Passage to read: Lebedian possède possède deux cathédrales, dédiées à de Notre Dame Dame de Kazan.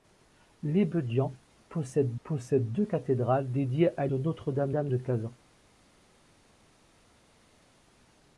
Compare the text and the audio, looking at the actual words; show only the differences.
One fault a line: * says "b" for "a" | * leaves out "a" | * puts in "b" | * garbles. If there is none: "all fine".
all fine